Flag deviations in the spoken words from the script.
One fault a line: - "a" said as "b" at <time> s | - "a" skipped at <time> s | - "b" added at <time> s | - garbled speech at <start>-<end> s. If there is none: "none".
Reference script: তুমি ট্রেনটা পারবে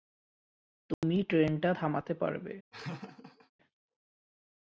- "থামাতে" added at 1.7 s